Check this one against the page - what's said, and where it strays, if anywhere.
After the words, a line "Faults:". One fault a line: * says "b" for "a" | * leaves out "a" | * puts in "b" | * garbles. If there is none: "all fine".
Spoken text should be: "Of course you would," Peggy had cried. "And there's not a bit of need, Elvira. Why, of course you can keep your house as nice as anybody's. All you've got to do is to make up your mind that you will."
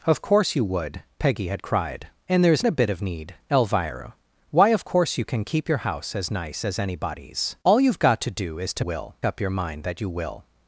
"Of course you would," Peggy had cried. "And there's a bit of need, Elvira. Why, of course you can keep your house as nice as anybody's. All you've got to do is to will up your mind that you will."
Faults:
* leaves out "not"
* says "will" for "make"